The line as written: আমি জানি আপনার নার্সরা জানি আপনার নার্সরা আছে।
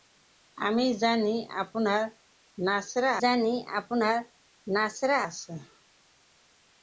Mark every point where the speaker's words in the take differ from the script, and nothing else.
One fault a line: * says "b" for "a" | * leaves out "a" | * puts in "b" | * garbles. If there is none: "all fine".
all fine